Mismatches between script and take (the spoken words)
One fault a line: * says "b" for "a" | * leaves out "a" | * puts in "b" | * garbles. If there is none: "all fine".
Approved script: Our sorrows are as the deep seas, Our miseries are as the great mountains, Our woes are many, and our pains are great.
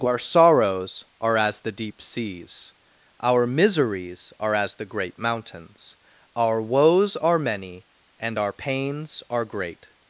all fine